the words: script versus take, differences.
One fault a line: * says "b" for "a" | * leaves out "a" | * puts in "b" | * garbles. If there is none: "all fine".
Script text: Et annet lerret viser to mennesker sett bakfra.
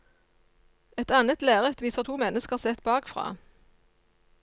all fine